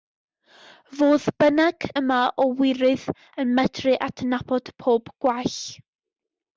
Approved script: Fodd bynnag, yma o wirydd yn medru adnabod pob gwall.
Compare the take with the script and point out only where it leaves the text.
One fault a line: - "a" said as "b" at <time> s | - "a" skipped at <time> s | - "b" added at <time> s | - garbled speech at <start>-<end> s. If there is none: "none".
none